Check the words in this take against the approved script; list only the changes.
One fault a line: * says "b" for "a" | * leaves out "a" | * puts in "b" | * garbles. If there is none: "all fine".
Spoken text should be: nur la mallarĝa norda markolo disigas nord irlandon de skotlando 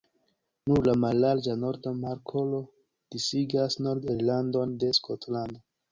all fine